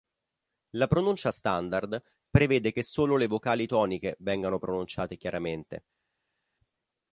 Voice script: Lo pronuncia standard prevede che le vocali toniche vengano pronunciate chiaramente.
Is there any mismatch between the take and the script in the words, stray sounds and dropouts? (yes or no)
yes